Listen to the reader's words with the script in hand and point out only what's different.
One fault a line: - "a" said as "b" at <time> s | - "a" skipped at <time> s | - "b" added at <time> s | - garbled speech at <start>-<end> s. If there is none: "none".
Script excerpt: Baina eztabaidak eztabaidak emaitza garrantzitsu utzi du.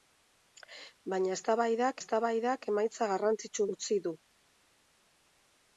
none